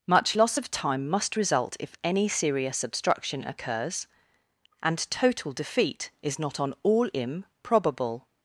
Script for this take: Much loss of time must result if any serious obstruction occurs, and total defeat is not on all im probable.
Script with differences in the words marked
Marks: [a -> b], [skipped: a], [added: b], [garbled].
Much loss of time must result if any serious obstruction occurs, and total defeat is not on all im probable.